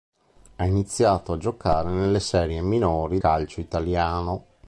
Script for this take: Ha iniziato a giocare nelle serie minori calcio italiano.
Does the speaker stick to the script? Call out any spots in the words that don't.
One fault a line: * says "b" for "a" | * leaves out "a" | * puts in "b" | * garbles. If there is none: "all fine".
all fine